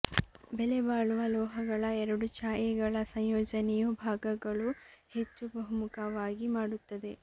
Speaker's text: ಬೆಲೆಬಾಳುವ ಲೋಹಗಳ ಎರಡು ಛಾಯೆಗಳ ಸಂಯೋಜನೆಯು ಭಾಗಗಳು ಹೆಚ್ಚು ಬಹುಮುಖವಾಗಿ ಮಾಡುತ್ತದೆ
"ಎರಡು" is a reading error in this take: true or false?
false